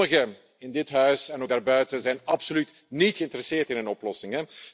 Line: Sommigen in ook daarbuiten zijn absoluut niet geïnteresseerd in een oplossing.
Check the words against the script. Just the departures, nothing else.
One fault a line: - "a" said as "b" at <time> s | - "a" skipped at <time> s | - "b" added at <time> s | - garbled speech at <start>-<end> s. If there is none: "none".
- "dit huis en" added at 0.7 s